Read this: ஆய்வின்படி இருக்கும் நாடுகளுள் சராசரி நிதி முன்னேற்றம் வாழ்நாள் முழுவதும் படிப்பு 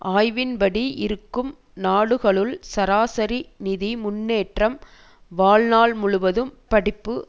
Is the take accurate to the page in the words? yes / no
yes